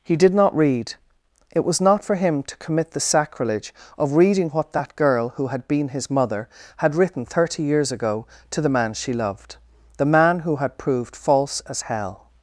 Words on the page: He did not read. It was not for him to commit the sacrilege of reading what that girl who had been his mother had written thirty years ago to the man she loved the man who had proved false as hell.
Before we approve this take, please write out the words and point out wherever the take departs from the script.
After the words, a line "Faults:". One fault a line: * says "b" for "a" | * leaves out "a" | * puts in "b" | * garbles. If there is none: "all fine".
He did not read. It was not for him to commit the sacrilege of reading what that girl who had been his mother had written thirty years ago to the man she loved the man who had proved false as hell.
Faults:
all fine